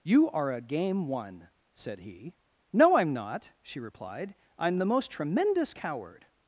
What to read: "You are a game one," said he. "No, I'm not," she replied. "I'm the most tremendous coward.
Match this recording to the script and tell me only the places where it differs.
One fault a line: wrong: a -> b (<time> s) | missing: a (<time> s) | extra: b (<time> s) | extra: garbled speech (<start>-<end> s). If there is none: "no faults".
no faults